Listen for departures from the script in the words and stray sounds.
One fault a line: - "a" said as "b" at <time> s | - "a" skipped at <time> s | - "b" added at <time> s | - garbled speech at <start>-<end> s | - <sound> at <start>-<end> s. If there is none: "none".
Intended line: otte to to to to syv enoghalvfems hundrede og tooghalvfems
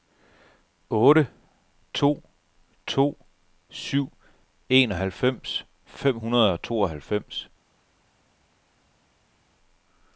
- "to to" skipped at 3.2 s
- "fem" added at 5.8 s